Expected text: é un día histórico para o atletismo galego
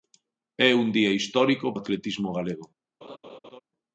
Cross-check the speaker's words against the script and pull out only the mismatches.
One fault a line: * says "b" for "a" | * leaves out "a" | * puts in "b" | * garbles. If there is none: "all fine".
* leaves out "para"